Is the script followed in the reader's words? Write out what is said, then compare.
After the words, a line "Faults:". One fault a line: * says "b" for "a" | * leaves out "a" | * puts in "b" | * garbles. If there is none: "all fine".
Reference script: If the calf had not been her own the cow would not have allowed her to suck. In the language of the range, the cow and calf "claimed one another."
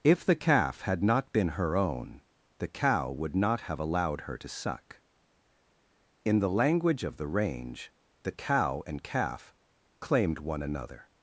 If the calf had not been her own the cow would not have allowed her to suck. In the language of the range, the cow and calf "claimed one another."
Faults:
all fine